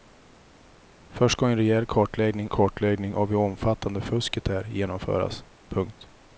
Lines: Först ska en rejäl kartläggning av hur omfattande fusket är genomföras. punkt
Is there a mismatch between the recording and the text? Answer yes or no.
yes